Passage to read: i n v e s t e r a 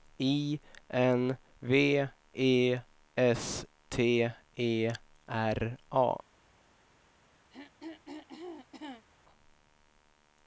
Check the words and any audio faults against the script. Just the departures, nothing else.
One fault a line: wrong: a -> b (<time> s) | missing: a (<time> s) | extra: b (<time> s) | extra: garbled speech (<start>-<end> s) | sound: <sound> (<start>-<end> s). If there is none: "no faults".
sound: throat clearing (7.5-9.1 s)